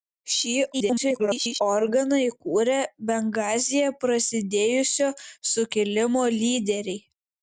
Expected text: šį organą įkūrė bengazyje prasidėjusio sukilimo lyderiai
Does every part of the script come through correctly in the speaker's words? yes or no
no